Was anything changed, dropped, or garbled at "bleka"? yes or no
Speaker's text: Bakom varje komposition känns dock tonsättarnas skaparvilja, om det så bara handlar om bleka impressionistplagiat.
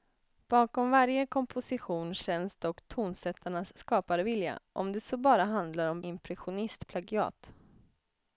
yes